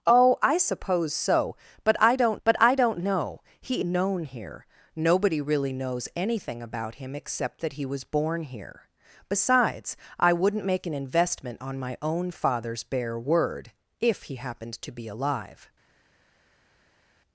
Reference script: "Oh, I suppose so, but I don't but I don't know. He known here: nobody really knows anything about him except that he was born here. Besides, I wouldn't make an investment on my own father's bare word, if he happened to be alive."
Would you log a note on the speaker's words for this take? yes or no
no